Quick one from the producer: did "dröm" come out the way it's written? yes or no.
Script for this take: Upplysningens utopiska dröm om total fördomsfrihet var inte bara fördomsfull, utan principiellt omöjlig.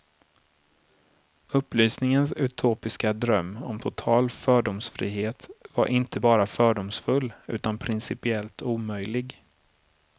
yes